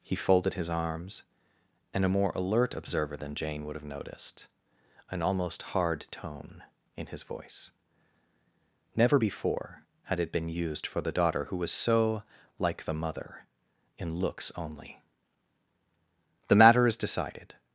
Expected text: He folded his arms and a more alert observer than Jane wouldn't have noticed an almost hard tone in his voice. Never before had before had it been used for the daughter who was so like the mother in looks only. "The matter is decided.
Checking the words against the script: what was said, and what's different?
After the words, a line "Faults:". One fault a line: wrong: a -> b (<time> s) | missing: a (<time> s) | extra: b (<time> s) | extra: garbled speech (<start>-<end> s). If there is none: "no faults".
He folded his arms and a more alert observer than Jane would have noticed an almost hard tone in his voice. Never before had it been used for the daughter who was so like the mother in looks only. "The matter is decided.
Faults:
wrong: wouldn't -> would (3.6 s)
missing: before had (10.2 s)